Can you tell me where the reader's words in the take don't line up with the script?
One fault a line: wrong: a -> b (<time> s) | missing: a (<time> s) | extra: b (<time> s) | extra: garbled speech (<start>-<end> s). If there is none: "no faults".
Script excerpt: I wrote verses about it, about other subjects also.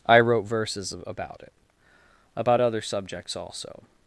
no faults